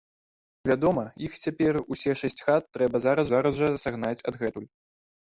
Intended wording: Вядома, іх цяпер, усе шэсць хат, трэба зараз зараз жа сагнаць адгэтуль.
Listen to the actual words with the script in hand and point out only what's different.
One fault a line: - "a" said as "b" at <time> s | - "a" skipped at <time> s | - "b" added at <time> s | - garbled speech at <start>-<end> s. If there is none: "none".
none